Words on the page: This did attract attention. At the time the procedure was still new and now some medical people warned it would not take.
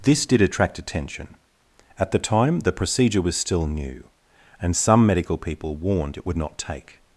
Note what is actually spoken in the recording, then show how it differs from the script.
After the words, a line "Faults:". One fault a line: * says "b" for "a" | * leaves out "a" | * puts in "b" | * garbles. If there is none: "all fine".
This did attract attention. At the time the procedure was still new and some medical people warned it would not take.
Faults:
* leaves out "now"